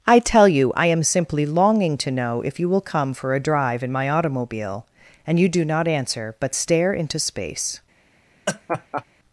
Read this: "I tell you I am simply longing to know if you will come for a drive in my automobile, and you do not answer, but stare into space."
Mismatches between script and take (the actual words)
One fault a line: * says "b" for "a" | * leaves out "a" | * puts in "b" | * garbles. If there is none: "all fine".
all fine